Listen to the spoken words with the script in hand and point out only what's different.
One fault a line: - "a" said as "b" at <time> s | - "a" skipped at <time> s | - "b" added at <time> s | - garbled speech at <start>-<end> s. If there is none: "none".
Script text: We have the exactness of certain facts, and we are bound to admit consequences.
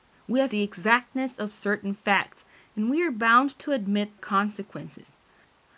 none